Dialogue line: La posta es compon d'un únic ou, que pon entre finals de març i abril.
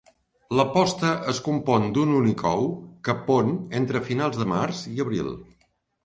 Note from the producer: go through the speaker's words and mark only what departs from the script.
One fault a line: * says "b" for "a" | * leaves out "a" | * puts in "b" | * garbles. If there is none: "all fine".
all fine